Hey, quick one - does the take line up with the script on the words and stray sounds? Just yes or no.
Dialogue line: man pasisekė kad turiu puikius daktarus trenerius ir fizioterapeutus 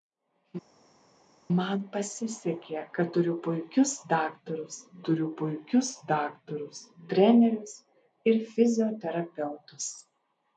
no